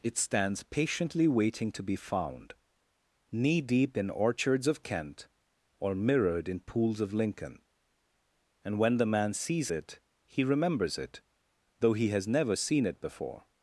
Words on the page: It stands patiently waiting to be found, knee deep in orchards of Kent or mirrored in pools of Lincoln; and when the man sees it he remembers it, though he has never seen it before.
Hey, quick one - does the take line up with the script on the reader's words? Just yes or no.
yes